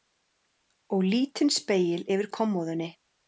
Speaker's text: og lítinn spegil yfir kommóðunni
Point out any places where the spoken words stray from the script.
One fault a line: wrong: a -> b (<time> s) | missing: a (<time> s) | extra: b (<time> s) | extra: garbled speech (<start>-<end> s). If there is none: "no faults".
no faults